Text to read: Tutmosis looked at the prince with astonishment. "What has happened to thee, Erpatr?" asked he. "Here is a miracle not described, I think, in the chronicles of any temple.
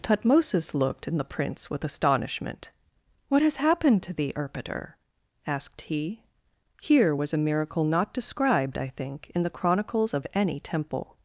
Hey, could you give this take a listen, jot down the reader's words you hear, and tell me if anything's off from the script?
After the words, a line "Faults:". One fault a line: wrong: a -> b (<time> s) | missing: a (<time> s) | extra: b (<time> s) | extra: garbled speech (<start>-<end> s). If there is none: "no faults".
Tutmosis looked in the prince with astonishment. "What has happened to thee, Erpatr?" asked he. "Here was a miracle not described, I think, in the chronicles of any temple.
Faults:
wrong: at -> in (1.1 s)
wrong: is -> was (7.1 s)